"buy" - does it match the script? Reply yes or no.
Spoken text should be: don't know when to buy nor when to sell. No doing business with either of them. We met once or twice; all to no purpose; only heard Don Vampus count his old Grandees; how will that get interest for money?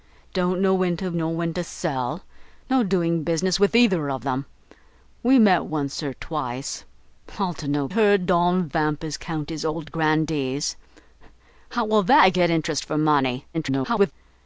no